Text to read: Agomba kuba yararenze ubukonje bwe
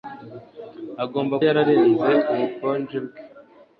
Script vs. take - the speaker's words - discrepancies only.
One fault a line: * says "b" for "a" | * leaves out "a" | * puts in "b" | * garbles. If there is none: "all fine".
* leaves out "kuba"